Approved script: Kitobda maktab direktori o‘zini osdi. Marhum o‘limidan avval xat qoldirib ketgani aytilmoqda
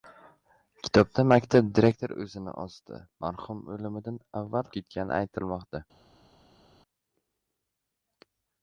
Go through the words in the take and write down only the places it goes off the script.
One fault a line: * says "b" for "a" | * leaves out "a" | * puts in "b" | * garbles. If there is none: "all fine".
* leaves out "xat qoldirib"